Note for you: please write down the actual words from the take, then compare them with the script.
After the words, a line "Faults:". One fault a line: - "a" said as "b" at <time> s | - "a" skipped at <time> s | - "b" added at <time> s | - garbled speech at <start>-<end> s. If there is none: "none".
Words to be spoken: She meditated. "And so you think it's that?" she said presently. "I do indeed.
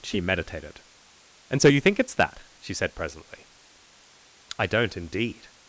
She meditated. "And so you think it's that?" she said presently. "I don't indeed.
Faults:
- "do" said as "don't" at 4.7 s